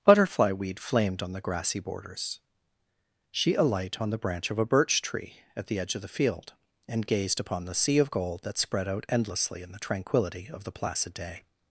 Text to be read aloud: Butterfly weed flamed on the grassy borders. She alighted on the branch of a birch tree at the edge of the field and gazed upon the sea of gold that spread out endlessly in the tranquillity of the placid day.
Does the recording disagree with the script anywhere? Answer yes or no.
yes